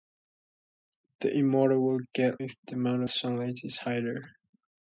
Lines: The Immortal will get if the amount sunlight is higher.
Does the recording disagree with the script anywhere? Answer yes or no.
no